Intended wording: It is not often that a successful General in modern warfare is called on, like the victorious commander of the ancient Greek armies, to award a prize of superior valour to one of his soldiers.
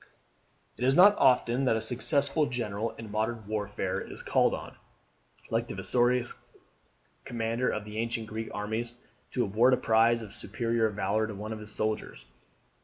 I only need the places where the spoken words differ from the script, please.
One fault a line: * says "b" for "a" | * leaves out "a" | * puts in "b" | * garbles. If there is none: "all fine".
all fine